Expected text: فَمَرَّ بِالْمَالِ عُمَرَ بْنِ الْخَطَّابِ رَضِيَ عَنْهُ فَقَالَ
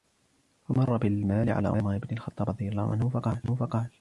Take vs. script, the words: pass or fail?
fail